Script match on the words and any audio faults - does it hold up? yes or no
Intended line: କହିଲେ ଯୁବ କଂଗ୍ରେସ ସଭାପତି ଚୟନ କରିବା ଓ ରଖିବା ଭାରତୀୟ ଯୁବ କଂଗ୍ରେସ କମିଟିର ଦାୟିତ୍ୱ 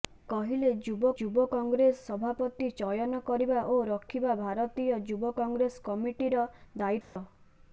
no